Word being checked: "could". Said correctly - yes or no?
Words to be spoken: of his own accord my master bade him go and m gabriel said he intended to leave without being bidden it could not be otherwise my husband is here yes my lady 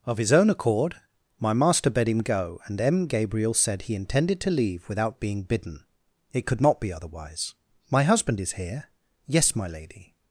yes